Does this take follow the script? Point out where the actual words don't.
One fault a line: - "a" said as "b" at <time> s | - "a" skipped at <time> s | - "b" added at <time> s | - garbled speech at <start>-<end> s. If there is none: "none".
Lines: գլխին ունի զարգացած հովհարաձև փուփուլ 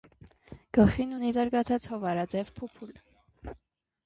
none